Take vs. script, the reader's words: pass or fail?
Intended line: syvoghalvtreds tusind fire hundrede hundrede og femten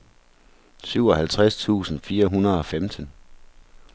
fail